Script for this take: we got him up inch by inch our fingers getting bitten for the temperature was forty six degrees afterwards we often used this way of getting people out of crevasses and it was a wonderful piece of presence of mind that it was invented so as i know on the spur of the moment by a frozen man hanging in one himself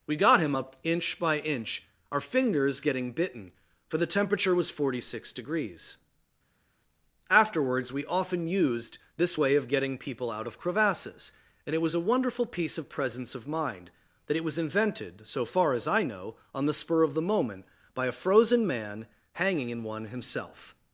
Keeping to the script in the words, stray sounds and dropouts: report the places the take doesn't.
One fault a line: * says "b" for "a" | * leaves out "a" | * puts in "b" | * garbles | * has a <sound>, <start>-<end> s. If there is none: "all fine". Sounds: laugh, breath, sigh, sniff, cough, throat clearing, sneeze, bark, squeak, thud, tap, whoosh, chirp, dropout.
* puts in "far"